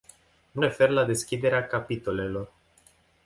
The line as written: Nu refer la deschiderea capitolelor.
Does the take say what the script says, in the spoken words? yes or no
yes